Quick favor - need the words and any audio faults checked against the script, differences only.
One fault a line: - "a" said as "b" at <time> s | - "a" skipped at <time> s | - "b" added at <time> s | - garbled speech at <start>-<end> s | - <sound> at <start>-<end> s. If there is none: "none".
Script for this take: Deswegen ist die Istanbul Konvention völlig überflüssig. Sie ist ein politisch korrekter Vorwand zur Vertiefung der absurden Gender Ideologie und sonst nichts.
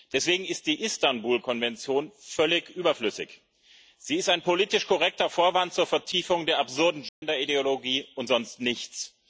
- dropout at 7.1-7.2 s